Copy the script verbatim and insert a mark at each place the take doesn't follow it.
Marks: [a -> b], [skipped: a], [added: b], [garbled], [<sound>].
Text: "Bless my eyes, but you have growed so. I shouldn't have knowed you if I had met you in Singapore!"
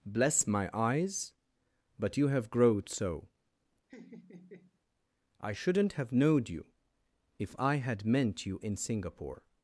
"Bless my eyes, but you have growed so. [laugh] I shouldn't have knowed you if I had [met -> meant] you in Singapore!"